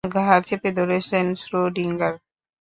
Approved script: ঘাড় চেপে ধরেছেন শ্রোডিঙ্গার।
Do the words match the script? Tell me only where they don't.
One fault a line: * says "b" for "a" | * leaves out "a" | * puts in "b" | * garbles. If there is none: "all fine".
all fine